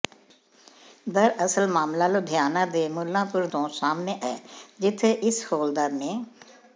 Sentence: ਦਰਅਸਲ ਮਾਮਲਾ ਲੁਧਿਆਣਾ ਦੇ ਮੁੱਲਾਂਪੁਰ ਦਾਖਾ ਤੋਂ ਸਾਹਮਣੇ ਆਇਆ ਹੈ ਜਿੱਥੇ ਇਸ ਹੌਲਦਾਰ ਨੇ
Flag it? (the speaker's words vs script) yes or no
yes